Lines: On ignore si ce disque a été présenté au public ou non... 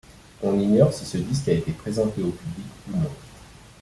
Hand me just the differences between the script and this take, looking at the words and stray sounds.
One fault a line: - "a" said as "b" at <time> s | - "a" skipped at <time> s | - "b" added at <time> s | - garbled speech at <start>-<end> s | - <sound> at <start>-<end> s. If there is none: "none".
none